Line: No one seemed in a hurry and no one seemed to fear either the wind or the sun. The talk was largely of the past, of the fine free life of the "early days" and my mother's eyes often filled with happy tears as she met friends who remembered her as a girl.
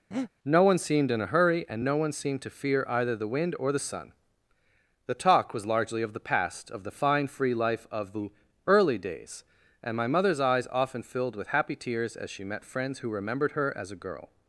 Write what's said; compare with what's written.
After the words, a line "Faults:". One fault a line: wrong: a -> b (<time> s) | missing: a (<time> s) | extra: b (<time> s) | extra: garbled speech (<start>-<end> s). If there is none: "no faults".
No one seemed in a hurry and no one seemed to fear either the wind or the sun. The talk was largely of the past, of the fine free life of the "early days" and my mother's eyes often filled with happy tears as she met friends who remembered her as a girl.
Faults:
no faults